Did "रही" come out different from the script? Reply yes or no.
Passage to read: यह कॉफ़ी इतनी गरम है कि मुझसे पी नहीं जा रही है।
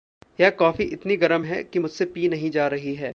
no